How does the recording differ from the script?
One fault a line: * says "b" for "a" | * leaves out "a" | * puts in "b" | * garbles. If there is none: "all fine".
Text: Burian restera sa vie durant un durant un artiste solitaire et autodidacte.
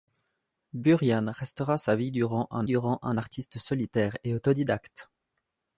all fine